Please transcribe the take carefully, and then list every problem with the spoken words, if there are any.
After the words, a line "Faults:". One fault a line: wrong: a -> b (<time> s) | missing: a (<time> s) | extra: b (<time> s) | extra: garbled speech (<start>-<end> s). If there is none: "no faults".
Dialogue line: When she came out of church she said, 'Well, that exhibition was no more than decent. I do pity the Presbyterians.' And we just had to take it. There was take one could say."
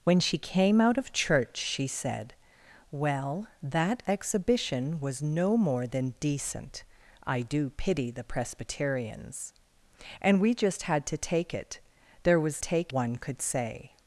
When she came out of church she said, 'Well, that exhibition was no more than decent. I do pity the Presbyterians.' And we just had to take it. There was take one could say."
Faults:
no faults